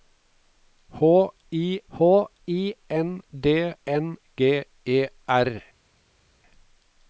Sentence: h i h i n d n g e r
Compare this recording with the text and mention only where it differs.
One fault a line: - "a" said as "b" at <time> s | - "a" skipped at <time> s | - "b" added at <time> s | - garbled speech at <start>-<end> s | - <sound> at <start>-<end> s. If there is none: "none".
none